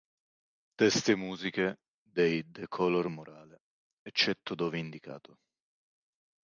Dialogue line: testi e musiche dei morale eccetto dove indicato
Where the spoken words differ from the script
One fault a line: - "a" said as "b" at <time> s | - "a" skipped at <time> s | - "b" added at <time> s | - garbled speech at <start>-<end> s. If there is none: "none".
- "the color" added at 2.5 s